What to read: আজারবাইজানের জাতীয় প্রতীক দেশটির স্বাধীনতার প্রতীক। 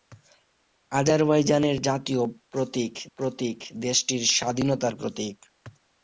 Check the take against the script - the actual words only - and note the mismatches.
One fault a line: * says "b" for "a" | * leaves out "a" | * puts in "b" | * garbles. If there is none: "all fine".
* puts in "প্রতীক"